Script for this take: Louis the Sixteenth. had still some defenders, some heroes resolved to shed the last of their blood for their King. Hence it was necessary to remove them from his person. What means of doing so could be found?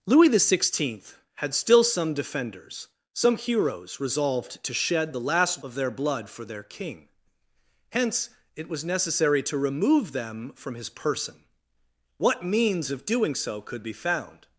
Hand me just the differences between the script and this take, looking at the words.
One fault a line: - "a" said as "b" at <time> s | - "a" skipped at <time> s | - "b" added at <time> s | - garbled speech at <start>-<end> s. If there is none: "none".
none